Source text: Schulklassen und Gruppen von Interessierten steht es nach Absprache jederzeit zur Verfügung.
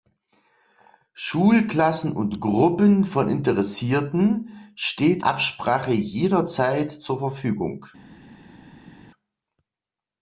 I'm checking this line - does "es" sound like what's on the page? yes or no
no